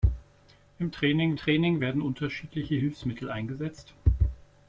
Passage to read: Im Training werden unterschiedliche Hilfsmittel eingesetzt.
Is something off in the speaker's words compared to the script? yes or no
yes